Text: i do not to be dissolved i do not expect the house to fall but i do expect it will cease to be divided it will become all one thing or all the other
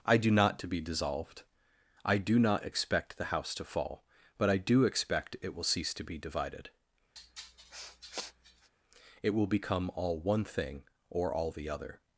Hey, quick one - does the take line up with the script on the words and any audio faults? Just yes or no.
no